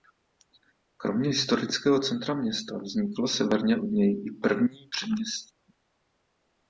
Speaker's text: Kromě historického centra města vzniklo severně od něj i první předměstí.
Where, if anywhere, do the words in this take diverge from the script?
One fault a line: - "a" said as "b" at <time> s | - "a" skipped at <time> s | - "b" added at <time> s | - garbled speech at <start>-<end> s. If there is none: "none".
none